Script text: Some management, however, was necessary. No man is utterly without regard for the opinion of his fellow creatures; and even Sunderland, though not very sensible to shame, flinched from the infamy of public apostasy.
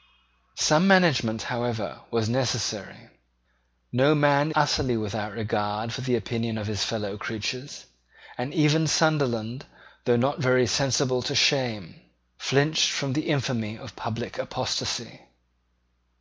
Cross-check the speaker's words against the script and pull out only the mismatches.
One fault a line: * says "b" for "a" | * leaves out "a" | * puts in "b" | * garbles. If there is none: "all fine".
* leaves out "is"